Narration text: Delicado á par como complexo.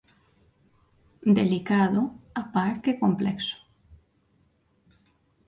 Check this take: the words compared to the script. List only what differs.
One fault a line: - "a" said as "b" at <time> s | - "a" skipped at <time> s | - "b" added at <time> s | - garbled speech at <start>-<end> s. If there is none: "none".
- "como" said as "que" at 2.8 s